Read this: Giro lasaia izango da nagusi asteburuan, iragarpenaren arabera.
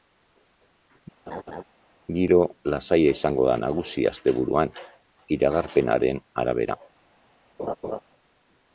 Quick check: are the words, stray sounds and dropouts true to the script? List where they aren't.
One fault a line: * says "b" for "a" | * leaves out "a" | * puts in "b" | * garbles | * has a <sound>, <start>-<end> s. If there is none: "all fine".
* has a laugh, 1.3-1.6 s
* has a laugh, 7.6-8.0 s